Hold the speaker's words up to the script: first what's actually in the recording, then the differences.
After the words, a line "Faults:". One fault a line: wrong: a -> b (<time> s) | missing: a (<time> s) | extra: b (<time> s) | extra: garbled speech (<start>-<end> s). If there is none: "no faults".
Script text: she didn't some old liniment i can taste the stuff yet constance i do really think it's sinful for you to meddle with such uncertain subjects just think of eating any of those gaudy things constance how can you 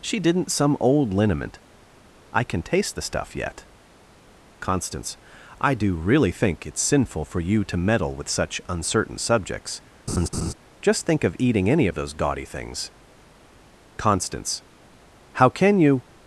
she didn't some old liniment i can taste the stuff yet constance i do really think it's sinful for you to meddle with such uncertain subjects just think of eating any of those gaudy things constance how can you
Faults:
no faults